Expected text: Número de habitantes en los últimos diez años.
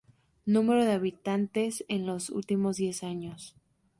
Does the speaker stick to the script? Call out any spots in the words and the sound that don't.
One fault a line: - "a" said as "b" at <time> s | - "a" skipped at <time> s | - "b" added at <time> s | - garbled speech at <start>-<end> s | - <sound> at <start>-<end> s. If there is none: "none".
none